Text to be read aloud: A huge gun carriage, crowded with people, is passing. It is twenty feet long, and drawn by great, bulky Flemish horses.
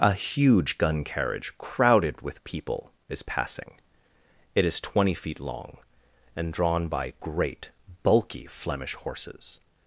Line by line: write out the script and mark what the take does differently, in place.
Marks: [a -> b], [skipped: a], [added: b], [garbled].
A huge gun carriage, crowded with people, is passing. It is twenty feet long, and drawn by great, bulky Flemish horses.